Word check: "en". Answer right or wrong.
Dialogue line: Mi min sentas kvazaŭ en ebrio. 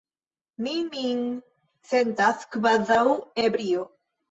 wrong